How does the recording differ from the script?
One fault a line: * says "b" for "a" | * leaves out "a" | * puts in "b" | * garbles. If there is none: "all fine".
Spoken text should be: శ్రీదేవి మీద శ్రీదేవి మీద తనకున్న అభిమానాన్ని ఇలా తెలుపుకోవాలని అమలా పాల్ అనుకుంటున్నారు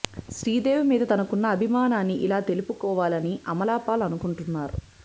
* leaves out "శ్రీదేవి మీద"